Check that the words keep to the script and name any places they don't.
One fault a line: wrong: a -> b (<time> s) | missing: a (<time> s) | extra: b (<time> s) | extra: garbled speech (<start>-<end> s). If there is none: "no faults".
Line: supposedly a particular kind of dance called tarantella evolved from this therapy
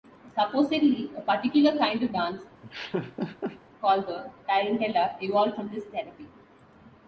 extra: the (4.1 s)